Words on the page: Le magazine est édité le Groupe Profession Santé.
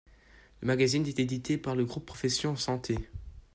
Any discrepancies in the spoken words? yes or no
yes